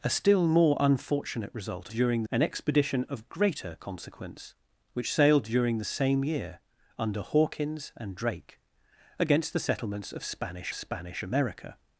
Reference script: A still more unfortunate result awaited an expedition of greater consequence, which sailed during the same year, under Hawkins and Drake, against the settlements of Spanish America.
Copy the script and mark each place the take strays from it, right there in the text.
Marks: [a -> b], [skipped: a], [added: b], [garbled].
A still more unfortunate result [awaited -> during] an expedition of greater consequence, which sailed during the same year, under Hawkins and Drake, against the settlements of Spanish [added: Spanish] America.